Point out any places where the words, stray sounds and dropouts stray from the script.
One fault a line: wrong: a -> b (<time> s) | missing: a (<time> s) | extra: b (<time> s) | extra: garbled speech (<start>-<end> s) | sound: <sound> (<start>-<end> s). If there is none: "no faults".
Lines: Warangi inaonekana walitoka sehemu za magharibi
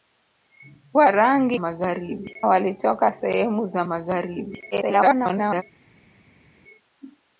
wrong: inaonekana -> magharibi (1.5 s)
extra: garbled speech (4.7-5.6 s)